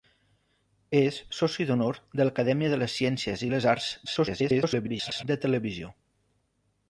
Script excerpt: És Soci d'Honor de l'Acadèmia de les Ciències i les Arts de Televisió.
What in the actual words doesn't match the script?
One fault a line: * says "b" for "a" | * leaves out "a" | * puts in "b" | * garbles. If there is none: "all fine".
* garbles